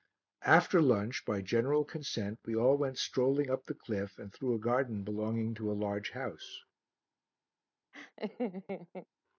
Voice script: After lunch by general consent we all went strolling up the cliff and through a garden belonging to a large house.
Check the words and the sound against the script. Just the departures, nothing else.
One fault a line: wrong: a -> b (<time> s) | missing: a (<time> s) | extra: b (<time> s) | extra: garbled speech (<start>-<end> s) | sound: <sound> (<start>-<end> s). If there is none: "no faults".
sound: laugh (7.9-9.1 s)